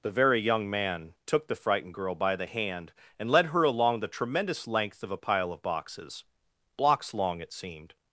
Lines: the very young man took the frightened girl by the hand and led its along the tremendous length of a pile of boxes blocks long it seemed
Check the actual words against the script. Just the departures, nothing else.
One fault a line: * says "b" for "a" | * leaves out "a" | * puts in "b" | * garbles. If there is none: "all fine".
* says "her" for "its"